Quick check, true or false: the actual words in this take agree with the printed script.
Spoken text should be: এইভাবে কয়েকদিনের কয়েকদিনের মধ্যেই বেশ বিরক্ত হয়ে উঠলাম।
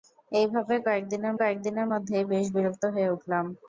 true